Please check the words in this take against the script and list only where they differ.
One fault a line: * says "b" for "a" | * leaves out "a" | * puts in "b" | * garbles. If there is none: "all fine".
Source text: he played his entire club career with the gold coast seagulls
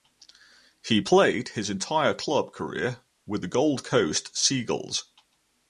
all fine